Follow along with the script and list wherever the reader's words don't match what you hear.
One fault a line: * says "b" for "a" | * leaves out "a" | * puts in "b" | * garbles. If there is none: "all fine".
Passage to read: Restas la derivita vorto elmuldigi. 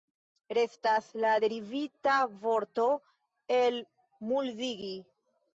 all fine